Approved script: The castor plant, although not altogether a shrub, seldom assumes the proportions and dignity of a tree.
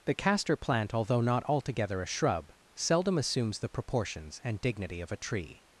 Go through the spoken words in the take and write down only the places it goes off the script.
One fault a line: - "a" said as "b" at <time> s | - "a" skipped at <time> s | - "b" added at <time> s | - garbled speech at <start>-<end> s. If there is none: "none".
none